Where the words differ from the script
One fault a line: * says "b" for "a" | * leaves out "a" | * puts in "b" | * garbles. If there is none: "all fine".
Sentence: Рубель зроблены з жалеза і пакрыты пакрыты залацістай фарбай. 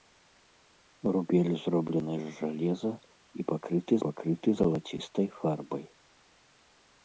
all fine